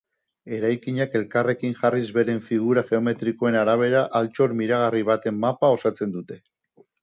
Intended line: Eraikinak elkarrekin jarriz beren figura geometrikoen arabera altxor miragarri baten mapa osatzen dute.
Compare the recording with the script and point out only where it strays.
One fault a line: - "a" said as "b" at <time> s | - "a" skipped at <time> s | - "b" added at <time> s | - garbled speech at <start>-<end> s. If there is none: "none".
none